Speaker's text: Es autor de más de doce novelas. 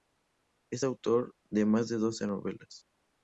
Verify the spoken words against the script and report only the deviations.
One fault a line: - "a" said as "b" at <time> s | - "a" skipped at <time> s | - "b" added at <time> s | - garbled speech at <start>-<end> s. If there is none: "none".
none